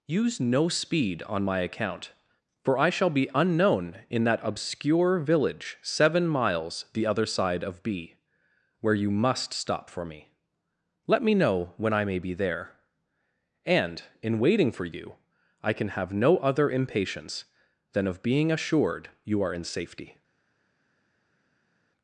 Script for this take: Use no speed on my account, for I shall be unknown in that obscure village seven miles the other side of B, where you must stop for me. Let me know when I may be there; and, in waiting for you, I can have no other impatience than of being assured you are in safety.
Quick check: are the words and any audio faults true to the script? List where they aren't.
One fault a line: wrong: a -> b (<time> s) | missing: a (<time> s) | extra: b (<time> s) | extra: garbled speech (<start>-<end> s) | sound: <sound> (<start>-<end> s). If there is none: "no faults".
no faults